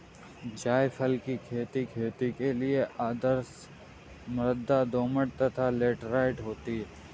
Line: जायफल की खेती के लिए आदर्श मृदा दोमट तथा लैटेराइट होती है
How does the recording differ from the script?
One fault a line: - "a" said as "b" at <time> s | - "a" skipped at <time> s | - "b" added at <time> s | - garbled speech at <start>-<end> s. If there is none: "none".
- "खेती" added at 1.8 s